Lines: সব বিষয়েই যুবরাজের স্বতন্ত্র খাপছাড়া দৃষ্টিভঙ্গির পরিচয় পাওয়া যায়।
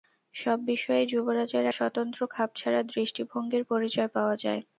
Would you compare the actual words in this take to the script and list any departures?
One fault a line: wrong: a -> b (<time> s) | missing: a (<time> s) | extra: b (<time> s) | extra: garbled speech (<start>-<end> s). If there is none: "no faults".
no faults